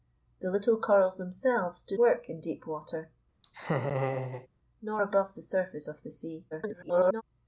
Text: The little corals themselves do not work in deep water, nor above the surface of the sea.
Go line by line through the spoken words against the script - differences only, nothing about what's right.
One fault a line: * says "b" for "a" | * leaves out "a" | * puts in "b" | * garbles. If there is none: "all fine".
* leaves out "not"
* garbles